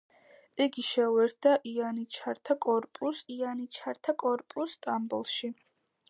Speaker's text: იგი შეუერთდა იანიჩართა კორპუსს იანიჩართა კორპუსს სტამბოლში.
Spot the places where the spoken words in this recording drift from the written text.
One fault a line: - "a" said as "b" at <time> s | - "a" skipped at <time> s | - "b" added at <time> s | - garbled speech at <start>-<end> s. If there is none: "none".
none